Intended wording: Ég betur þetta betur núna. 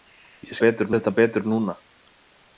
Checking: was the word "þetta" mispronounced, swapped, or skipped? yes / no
no